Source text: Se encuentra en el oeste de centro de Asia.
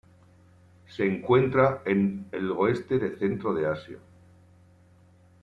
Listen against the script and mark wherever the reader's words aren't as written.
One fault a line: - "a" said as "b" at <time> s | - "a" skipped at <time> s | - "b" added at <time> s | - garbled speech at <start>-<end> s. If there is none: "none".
none